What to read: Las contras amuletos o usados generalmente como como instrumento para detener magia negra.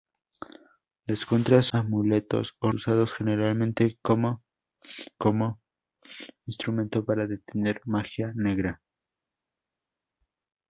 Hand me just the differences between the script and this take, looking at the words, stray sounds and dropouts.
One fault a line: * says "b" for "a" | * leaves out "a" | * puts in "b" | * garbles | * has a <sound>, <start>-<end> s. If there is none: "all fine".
all fine